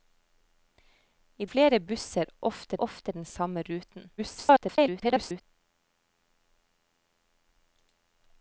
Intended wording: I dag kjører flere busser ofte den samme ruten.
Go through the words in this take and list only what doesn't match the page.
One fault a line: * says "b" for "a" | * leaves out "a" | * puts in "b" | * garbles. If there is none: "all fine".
* leaves out "dag kjører"
* puts in "ofte"
* garbles